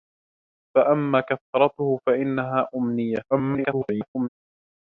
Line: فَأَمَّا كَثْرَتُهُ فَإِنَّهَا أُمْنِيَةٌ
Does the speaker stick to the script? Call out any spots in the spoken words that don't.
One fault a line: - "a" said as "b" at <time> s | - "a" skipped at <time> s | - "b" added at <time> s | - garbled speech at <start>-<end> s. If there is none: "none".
- garbled speech at 3.3-4.3 s